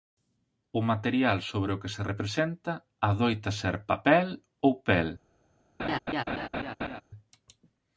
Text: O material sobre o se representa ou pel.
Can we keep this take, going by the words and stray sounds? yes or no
no